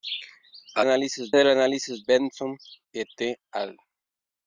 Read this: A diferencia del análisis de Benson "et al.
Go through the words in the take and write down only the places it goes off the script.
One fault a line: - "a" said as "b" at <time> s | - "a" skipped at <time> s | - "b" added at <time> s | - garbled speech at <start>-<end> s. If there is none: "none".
- "diferencia" said as "análisis" at 0.8 s
- "de" skipped at 2.0 s